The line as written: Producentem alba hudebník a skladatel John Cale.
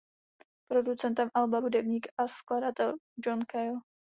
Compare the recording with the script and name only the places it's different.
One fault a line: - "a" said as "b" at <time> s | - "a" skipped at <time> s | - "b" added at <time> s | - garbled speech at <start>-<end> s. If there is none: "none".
none